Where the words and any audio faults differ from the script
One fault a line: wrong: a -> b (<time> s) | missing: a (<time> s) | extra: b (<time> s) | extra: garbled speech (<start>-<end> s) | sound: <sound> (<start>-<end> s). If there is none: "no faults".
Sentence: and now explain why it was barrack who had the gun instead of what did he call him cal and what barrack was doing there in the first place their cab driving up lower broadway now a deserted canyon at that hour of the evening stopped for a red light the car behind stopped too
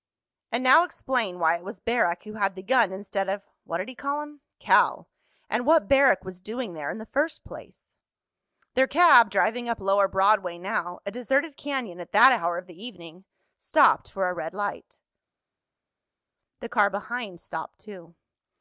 no faults